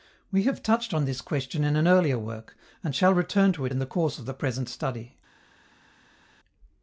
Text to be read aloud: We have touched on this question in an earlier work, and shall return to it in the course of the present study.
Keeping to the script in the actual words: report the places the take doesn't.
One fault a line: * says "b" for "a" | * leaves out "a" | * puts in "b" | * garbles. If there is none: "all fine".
all fine